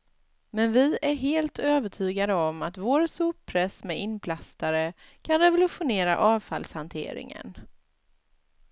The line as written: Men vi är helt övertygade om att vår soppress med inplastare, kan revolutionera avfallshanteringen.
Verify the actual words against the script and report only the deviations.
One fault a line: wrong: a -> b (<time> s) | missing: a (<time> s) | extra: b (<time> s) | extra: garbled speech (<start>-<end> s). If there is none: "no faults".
no faults